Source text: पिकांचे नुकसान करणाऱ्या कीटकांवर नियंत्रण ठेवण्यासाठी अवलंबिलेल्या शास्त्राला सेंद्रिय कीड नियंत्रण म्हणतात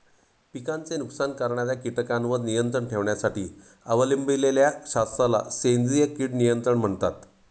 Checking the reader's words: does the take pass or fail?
pass